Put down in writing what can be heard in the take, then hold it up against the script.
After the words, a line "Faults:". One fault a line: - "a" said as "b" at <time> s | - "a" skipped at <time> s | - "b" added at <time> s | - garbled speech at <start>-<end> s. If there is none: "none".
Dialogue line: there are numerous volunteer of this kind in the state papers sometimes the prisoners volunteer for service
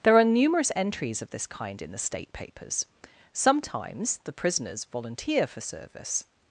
there are numerous entries of this kind in the state papers sometimes the prisoners volunteer for service
Faults:
- "volunteer" said as "entries" at 0.8 s